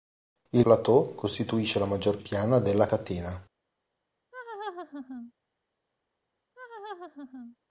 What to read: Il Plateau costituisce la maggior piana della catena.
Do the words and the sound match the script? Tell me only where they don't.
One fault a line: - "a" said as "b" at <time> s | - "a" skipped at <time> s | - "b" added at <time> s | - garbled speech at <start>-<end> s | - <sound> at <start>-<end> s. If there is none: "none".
- laugh at 4.3-5.3 s
- laugh at 6.5-7.6 s